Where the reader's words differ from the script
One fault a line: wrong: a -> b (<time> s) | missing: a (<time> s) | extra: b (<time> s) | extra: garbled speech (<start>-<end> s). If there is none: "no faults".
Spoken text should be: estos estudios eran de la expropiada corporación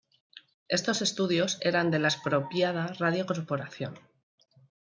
extra: radio (3.0 s)